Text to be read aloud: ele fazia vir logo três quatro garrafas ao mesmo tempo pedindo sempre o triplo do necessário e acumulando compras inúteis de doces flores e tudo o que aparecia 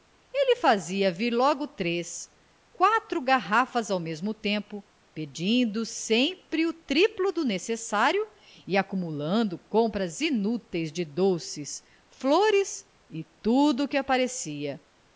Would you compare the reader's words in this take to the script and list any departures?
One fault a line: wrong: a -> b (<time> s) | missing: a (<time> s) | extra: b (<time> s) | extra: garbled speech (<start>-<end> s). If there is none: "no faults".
no faults